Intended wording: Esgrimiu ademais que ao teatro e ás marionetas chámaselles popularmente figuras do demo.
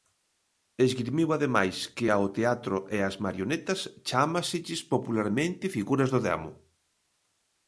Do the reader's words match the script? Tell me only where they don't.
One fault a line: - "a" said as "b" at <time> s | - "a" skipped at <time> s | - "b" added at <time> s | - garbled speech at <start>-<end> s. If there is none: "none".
none